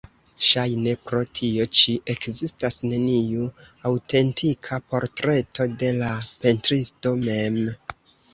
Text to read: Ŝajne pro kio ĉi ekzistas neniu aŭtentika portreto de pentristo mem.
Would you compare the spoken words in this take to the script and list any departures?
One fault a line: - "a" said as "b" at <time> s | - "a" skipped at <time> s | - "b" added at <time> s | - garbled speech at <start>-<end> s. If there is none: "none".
- "kio" said as "tio" at 1.4 s
- "la" added at 6.0 s